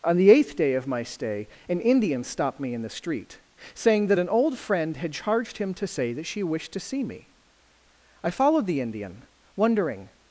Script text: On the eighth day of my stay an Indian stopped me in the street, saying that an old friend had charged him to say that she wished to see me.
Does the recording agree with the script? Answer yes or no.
no